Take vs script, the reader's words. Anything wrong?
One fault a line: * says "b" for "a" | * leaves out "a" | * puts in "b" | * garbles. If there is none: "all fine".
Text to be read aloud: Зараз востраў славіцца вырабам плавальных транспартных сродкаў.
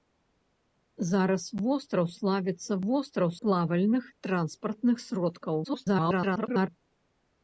* says "востраў" for "вырабам"
* garbles